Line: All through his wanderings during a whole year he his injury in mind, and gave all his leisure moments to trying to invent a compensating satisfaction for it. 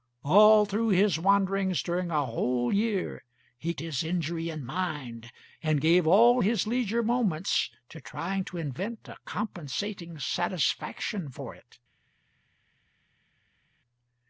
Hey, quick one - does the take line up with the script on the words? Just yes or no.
yes